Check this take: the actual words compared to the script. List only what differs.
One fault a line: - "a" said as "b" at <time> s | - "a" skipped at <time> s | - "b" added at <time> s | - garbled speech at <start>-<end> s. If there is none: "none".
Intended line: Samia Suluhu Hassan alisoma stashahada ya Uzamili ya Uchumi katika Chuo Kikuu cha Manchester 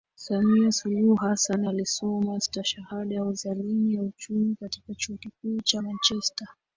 none